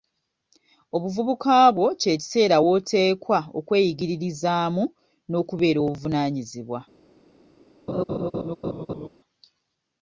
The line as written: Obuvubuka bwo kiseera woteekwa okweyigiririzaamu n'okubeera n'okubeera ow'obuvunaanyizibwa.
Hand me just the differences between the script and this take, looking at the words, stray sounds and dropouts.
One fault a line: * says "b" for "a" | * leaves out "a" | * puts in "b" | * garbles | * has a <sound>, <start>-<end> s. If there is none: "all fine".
* puts in "kye"
* leaves out "n'okubeera"
* has a laugh, 7.9-9.1 s